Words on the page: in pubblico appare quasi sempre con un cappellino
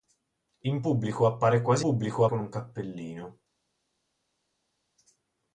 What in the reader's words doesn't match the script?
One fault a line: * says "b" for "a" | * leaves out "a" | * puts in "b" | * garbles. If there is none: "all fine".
* says "pubblico" for "sempre"